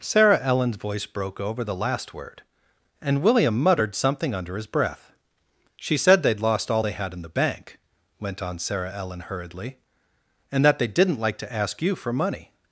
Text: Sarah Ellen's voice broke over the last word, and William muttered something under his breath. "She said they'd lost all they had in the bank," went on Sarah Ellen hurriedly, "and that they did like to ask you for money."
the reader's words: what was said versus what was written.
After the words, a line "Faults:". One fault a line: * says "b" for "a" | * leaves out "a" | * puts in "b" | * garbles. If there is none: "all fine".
Sarah Ellen's voice broke over the last word, and William muttered something under his breath. "She said they'd lost all they had in the bank," went on Sarah Ellen hurriedly, "and that they didn't like to ask you for money."
Faults:
* says "didn't" for "did"